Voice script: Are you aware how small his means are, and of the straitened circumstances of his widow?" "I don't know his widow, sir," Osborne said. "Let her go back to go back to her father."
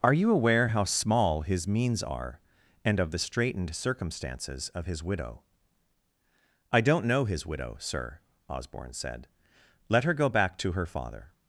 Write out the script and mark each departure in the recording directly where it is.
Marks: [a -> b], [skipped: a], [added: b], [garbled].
Are you aware how small his means are, and of the straitened circumstances of his widow?" "I don't know his widow, sir," Osborne said. "Let her go back to [skipped: go back to] her father."